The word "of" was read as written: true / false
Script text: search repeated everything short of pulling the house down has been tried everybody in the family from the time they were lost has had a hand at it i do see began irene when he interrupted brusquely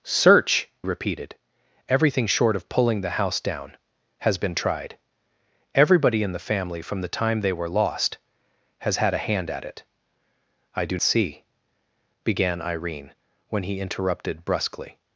true